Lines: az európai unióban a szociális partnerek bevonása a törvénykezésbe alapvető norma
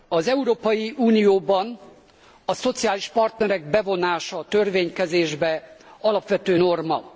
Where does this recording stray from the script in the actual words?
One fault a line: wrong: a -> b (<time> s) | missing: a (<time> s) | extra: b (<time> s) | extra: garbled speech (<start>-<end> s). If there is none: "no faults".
no faults